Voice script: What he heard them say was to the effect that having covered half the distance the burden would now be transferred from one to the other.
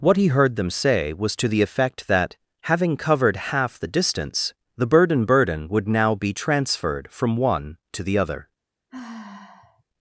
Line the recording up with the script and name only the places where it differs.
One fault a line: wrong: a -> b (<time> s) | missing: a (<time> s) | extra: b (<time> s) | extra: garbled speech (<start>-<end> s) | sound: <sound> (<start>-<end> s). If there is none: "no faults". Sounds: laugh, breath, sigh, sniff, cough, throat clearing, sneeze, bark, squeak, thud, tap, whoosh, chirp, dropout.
extra: burden (5.2 s)
sound: sigh (8.9-9.8 s)